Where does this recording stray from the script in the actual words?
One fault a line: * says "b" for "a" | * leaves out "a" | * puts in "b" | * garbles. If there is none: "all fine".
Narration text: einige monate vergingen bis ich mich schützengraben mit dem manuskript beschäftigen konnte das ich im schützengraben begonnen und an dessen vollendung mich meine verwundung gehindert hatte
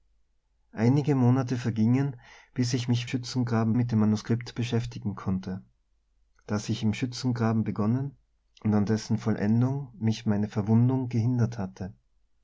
all fine